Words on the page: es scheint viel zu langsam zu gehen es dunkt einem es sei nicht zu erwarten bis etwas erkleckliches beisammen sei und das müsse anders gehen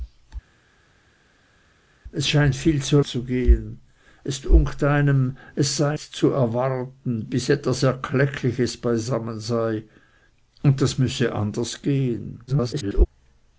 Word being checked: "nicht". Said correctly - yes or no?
no